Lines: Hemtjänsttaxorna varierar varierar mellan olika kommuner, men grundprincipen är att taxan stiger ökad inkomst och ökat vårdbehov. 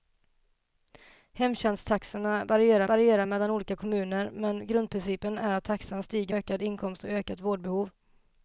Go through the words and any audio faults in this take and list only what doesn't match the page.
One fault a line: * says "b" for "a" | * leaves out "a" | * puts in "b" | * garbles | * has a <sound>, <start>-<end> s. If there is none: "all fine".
all fine